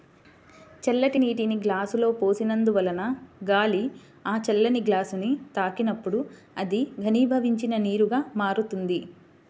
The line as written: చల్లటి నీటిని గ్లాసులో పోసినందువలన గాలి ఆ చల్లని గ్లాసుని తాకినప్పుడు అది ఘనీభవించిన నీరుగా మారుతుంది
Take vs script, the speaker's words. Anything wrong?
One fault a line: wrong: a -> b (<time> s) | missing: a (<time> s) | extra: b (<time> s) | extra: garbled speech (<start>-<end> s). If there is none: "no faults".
no faults